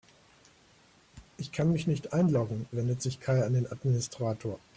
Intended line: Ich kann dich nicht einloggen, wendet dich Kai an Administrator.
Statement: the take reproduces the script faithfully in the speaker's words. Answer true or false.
false